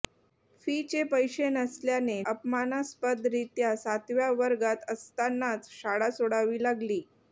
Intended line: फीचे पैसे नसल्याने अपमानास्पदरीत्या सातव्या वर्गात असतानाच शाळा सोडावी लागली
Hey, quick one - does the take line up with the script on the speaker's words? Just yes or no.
yes